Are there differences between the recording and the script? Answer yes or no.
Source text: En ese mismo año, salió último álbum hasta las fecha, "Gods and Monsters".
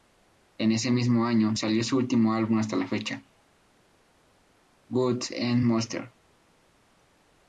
yes